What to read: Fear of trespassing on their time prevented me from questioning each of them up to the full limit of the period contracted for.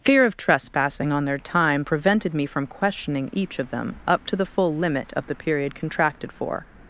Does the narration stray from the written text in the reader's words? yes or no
no